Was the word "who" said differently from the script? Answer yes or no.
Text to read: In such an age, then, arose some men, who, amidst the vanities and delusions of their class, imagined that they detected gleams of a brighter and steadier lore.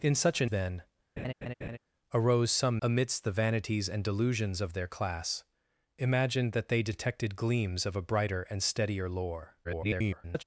yes